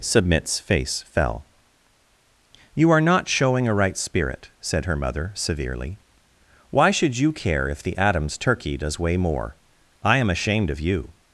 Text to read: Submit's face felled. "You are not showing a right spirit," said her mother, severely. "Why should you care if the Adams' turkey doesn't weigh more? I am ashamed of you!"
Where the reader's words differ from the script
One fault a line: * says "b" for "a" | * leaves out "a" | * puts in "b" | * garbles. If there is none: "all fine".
* says "fell" for "felled"
* says "does" for "doesn't"